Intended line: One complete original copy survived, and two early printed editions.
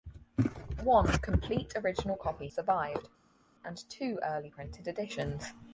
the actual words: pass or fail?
pass